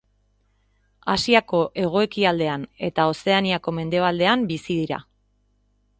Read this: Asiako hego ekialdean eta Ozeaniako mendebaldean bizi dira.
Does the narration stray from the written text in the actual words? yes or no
no